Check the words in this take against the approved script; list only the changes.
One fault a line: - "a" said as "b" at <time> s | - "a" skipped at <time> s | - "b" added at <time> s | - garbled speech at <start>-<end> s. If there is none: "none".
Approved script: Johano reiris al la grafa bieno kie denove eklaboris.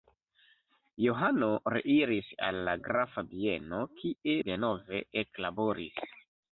none